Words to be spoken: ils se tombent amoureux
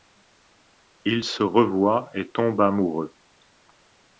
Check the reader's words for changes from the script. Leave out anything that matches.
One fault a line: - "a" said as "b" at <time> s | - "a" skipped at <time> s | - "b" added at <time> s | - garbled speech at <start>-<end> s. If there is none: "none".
- "revoient et" added at 1.4 s